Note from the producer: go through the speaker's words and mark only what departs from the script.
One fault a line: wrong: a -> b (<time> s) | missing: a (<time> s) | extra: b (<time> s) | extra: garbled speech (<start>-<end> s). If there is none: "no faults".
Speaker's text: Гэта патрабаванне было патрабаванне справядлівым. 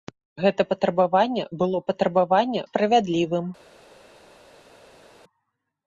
no faults